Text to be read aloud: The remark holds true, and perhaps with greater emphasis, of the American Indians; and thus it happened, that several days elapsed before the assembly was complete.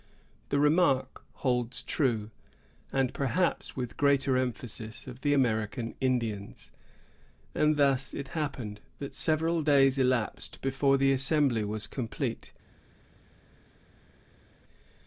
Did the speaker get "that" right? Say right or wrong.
right